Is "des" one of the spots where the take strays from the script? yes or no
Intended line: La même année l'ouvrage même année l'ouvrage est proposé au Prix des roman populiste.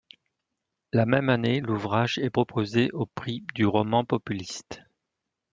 yes